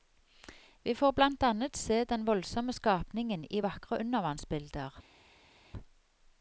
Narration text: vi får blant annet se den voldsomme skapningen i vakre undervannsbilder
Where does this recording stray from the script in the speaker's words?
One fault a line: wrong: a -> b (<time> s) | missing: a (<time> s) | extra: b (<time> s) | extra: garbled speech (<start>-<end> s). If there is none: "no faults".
no faults